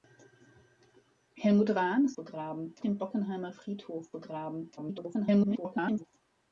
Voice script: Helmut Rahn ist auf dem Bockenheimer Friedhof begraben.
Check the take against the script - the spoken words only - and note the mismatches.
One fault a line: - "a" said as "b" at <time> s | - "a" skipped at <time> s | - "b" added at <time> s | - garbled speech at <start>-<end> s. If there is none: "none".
- "auf" said as "begraben" at 2.2 s
- garbled speech at 4.8-6.1 s